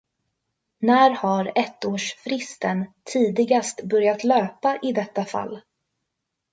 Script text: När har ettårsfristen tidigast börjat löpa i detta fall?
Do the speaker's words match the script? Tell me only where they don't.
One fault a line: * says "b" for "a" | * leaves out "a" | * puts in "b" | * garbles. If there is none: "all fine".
all fine